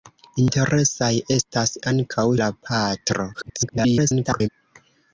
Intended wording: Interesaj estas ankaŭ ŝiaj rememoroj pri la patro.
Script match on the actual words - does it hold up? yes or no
no